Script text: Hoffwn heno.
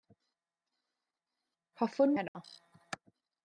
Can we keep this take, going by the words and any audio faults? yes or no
no